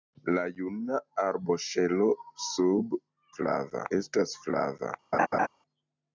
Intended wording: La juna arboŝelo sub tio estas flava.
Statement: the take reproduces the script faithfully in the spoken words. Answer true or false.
false